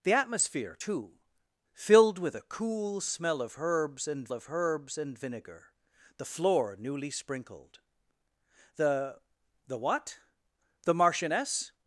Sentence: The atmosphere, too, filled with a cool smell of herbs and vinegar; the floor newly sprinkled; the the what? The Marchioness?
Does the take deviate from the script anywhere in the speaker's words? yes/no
yes